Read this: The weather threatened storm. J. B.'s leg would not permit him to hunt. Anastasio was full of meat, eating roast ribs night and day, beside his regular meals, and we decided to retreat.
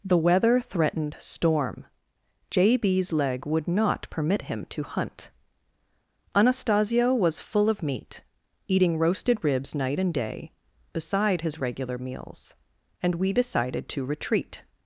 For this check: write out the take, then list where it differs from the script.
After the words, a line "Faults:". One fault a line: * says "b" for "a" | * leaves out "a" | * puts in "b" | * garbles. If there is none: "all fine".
The weather threatened storm. J. B.'s leg would not permit him to hunt. Anastasio was full of meat, eating roasted ribs night and day, beside his regular meals, and we decided to retreat.
Faults:
* says "roasted" for "roast"